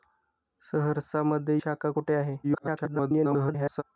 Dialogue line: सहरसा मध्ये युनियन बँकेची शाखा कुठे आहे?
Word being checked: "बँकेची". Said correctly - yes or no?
no